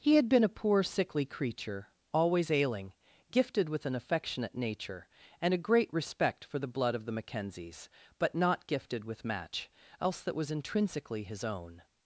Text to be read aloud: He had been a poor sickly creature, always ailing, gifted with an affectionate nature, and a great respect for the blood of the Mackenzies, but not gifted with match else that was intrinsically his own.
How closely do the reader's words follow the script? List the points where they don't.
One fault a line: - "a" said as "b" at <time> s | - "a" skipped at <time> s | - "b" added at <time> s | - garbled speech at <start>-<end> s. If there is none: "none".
none